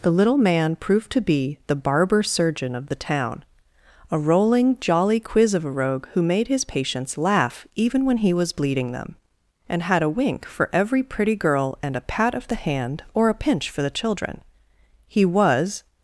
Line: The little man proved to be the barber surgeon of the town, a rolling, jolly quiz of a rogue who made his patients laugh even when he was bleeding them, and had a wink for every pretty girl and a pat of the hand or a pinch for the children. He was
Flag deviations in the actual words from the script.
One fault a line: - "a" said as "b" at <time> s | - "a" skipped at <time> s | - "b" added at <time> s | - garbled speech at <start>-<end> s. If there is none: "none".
none